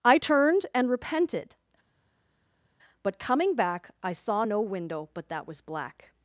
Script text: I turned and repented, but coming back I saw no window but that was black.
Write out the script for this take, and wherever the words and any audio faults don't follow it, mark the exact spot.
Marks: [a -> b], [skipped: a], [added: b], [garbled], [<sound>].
I turned and repented, but coming back I saw no window but that was black.